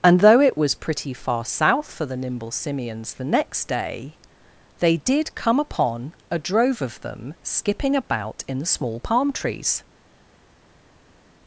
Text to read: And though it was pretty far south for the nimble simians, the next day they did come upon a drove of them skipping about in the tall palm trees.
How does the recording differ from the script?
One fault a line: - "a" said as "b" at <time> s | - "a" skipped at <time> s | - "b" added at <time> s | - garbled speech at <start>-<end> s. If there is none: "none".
- "tall" said as "small" at 8.7 s